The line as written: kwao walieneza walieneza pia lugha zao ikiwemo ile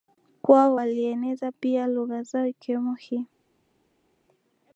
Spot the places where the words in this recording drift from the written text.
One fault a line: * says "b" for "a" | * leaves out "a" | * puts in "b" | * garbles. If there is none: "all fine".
* leaves out "walieneza"
* says "hii" for "ile"